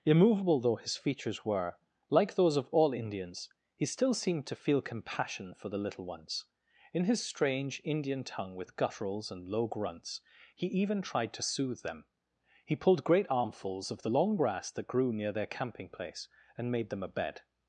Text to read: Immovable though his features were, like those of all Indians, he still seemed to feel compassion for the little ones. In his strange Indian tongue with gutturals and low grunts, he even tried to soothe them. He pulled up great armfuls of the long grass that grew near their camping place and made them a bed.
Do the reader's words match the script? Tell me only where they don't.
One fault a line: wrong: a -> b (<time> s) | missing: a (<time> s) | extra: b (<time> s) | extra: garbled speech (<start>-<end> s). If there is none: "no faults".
missing: up (13.0 s)